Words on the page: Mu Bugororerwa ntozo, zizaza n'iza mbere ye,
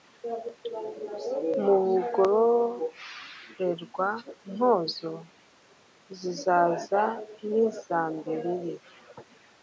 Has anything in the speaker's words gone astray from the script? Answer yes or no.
no